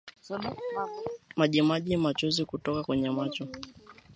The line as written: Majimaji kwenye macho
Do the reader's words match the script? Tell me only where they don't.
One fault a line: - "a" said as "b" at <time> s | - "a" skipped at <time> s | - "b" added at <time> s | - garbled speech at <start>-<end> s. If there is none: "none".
- "machozi kutoka" added at 2.0 s